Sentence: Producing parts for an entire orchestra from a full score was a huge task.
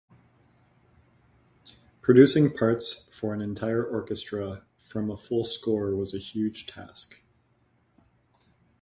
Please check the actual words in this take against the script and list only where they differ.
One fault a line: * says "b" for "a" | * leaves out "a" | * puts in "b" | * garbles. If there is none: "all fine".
all fine